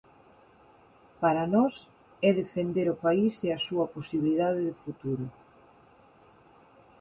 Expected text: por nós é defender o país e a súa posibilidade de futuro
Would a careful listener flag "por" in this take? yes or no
yes